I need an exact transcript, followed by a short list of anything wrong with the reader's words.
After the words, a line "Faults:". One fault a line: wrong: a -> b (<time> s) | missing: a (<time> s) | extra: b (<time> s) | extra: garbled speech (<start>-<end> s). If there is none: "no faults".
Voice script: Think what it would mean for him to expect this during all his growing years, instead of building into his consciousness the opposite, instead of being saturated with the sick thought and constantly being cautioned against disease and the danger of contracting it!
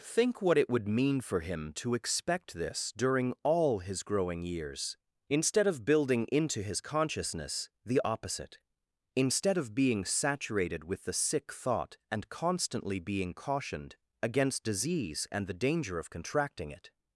Think what it would mean for him to expect this during all his growing years, instead of building into his consciousness the opposite, instead of being saturated with the sick thought and constantly being cautioned against disease and the danger of contracting it!
Faults:
no faults